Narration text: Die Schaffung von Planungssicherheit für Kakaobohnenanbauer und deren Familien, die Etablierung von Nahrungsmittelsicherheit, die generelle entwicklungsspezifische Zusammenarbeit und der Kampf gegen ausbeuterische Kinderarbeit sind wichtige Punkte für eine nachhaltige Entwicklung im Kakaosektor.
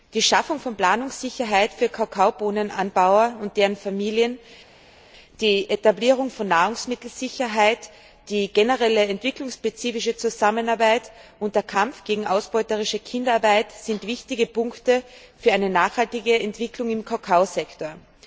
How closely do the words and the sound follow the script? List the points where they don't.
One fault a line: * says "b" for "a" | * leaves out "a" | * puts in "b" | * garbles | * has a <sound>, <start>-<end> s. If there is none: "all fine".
all fine